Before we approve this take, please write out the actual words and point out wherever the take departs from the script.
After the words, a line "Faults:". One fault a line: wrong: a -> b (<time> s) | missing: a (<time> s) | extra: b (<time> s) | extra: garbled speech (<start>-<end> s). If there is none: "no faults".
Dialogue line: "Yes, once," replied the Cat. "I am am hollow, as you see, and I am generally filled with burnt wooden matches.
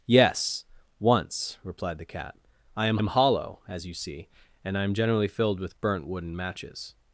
"Yes, once," replied the Cat. "I am am hollow, as you see, and I am generally filled with burnt wooden matches.
Faults:
no faults